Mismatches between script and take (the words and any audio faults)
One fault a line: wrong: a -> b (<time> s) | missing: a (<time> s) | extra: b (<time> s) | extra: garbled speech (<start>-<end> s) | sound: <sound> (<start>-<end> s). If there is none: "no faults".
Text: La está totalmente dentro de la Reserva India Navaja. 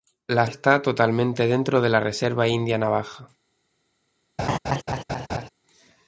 sound: laugh (4.4-5.5 s)